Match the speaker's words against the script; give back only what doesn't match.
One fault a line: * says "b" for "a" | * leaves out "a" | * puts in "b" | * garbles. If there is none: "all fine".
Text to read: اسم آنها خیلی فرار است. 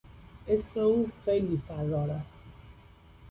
* says "او" for "آنها"